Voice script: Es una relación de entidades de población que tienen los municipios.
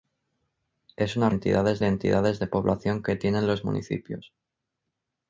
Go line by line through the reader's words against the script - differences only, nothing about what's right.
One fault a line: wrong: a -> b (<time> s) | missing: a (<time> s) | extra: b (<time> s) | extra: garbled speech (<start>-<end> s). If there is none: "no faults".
wrong: relación -> entidades (1.3 s)